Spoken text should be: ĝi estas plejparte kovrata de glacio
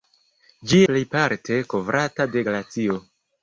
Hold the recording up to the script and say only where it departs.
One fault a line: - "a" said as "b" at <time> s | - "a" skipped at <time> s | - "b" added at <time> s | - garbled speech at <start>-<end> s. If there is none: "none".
- "estas" skipped at 0.8 s